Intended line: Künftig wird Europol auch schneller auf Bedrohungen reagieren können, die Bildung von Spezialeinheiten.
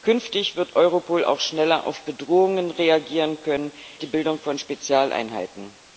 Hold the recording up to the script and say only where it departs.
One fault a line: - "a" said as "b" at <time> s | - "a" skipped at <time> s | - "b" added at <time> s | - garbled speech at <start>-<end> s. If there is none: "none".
none